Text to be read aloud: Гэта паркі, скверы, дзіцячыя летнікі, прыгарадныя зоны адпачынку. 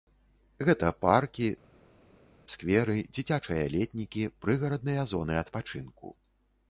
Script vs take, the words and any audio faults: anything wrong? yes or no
no